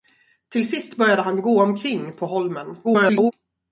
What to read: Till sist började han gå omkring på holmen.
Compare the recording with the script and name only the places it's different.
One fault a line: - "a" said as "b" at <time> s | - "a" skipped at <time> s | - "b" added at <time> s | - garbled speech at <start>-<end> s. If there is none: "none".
- garbled speech at 2.8-3.3 s